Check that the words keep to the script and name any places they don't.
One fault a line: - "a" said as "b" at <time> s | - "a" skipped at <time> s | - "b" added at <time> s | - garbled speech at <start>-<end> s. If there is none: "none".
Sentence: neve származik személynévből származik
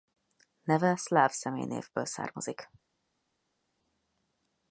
- "származik" said as "szláv" at 0.9 s